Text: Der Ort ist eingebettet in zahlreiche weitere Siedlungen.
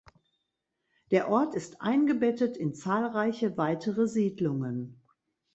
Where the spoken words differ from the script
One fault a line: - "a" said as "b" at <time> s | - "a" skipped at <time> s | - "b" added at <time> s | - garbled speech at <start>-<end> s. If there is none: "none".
none